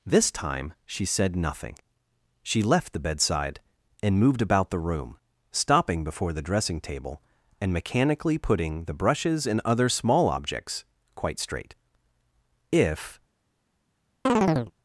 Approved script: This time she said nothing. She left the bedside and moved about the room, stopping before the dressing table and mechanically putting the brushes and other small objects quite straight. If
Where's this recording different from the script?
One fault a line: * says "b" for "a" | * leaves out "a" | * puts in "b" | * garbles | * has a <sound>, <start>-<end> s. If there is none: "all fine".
* has a chirp, 14.3-14.7 s